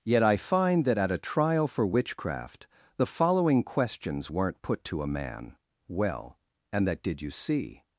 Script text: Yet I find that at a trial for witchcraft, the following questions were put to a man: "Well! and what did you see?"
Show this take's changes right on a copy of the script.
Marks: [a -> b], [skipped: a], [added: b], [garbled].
Yet I find that at a trial for witchcraft, the following questions [were -> weren't] put to a man: "Well! and [what -> that] did you see?"